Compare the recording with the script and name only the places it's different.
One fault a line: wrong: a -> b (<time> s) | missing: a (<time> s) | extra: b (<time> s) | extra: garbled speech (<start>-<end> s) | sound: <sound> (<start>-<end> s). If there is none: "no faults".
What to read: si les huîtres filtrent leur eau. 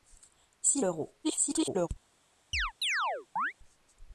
missing: les huîtres filtrent (0.8 s)
extra: garbled speech (1.2-1.9 s)
sound: chirp (2.5-3.5 s)